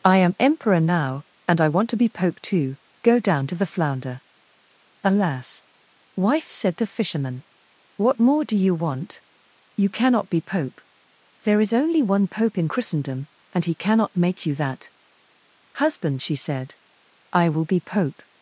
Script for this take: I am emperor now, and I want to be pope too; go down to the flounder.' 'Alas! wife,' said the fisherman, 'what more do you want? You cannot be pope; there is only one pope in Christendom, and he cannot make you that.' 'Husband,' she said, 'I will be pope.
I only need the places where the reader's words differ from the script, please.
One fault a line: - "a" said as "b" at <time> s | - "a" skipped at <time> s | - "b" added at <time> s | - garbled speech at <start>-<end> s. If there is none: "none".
none